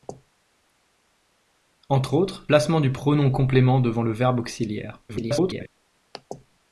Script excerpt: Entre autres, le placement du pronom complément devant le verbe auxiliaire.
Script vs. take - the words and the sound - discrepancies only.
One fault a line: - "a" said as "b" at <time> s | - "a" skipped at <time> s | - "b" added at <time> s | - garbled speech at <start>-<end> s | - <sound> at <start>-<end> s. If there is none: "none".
- "le" skipped at 2.5 s
- garbled speech at 5.1-5.7 s